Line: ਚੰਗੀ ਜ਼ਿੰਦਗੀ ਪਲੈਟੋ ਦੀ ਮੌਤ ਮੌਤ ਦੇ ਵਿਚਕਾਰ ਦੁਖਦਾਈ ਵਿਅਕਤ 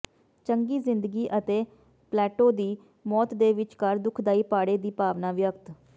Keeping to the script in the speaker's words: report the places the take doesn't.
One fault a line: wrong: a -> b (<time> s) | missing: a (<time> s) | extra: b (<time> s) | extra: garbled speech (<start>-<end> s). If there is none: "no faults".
extra: ਅਤੇ (1.4 s)
missing: ਮੌਤ (3.3 s)
extra: ਪਾੜੇ ਦੀ ਭਾਵਨਾ (4.5 s)